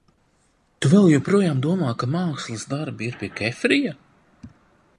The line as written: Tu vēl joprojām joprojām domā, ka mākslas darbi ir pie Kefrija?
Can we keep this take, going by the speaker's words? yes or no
no